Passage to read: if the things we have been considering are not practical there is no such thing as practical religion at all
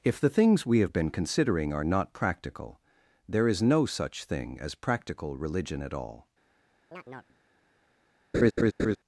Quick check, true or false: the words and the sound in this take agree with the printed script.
false